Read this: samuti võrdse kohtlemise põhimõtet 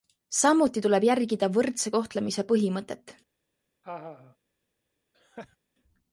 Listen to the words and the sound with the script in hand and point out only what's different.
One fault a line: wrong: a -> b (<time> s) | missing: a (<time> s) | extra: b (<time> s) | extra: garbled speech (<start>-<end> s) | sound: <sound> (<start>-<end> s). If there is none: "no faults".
extra: tuleb järgida (0.9 s)
sound: laugh (3.8-4.4 s)
sound: laugh (5.1-5.6 s)